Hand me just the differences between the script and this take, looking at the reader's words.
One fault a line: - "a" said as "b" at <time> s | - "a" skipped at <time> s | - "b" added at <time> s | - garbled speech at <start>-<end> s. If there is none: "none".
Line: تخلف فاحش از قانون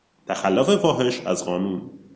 none